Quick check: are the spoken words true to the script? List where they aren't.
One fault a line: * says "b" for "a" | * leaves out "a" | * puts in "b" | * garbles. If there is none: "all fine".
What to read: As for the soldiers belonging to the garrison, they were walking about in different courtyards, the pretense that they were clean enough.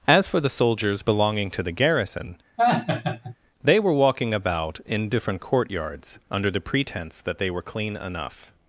* puts in "under"